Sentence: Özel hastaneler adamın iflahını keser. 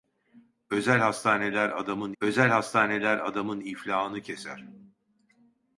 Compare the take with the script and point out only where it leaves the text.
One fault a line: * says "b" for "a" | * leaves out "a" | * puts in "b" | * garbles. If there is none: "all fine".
* puts in "özel hastaneler adamın"